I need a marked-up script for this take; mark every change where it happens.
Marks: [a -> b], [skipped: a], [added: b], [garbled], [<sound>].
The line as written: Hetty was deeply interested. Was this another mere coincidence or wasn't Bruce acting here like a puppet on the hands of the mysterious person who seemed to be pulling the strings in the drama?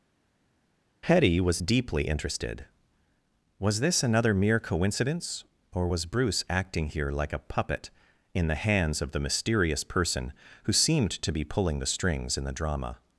Hetty was deeply interested. Was this another mere coincidence or [wasn't -> was] Bruce acting here like a puppet [on -> in] the hands of the mysterious person who seemed to be pulling the strings in the drama?